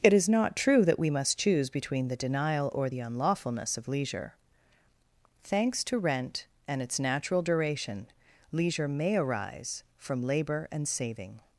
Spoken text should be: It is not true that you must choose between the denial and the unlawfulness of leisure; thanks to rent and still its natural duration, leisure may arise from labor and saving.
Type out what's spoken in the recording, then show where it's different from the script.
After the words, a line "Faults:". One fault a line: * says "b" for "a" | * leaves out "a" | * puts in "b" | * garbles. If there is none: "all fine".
It is not true that we must choose between the denial or the unlawfulness of leisure; thanks to rent and its natural duration, leisure may arise from labor and saving.
Faults:
* says "we" for "you"
* says "or" for "and"
* leaves out "still"